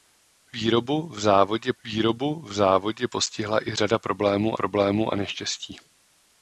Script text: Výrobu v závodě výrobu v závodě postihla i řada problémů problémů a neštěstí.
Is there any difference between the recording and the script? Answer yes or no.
no